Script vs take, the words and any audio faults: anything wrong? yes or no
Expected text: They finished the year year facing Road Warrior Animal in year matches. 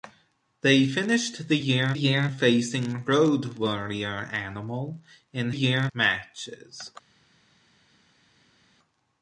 no